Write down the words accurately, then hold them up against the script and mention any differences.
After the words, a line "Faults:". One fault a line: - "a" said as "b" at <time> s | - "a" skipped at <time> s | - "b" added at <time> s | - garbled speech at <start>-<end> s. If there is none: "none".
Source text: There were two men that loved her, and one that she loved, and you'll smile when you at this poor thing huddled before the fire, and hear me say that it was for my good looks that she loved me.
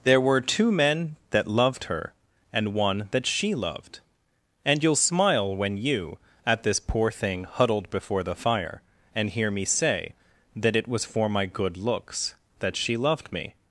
There were two men that loved her, and one that she loved, and you'll smile when you at this poor thing huddled before the fire, and hear me say that it was for my good looks that she loved me.
Faults:
none